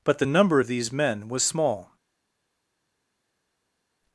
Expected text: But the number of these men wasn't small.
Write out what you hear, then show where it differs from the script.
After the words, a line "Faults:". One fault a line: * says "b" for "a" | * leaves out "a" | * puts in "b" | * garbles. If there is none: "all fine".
But the number of these men was small.
Faults:
* says "was" for "wasn't"